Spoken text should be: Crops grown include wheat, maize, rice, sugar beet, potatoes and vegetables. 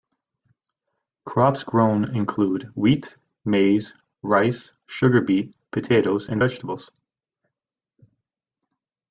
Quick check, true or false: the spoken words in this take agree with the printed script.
true